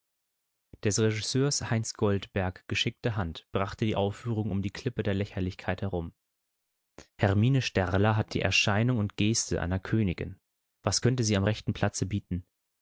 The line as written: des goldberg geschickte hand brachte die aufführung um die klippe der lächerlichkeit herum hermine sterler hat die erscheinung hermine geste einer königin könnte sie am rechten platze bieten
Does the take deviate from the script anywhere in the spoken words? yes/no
yes